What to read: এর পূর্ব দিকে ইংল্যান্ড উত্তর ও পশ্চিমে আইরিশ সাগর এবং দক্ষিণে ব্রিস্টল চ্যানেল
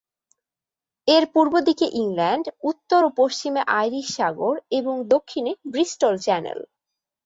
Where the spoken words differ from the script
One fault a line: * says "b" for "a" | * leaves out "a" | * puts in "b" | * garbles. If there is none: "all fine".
all fine